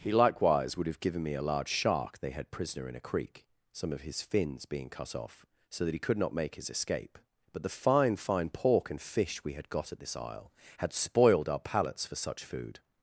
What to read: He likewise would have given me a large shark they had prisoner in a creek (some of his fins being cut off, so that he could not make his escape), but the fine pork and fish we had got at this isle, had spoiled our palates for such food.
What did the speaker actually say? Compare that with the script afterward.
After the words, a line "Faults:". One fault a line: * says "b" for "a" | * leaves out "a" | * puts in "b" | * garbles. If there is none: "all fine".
He likewise would have given me a large shark they had prisoner in a creek (some of his fins being cut off, so that he could not make his escape), but the fine fine pork and fish we had got at this isle, had spoiled our palates for such food.
Faults:
* puts in "fine"